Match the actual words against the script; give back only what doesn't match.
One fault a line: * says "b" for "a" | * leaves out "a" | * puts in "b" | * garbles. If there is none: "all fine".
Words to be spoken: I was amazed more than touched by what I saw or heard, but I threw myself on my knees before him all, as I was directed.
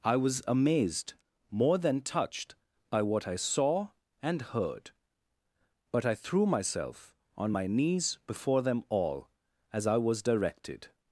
* says "and" for "or"
* says "them" for "him"